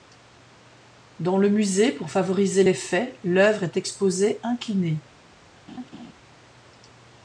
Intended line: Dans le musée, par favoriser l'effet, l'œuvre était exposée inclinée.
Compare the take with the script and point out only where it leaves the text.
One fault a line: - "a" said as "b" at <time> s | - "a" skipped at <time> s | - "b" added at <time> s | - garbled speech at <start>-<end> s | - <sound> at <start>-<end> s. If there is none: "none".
- "par" said as "pour" at 1.9 s
- "était" said as "est" at 3.6 s
- laugh at 5.7-6.1 s